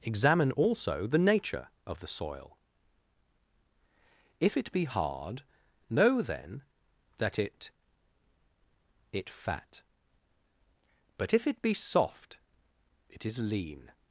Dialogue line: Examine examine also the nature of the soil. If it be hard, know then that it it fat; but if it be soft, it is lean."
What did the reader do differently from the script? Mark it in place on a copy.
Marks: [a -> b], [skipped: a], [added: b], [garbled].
Examine [skipped: examine] also the nature of the soil. If it be hard, know then that it it fat; but if it be soft, it is lean."